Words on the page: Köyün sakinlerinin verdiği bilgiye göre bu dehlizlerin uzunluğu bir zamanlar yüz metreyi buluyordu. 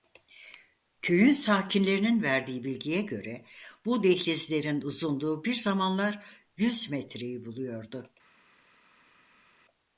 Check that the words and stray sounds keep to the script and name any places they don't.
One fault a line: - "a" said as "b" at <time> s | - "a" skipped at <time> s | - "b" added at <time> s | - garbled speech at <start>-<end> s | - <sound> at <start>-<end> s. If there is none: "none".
none